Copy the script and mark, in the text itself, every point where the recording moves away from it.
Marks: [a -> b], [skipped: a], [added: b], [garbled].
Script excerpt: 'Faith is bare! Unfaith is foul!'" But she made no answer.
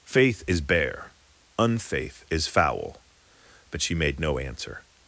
'Faith is bare! Unfaith is foul!'" But she made no answer.